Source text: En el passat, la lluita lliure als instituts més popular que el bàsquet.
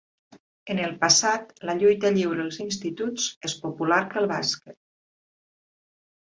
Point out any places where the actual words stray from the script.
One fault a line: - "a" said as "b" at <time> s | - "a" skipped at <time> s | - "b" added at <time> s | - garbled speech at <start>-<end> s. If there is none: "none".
none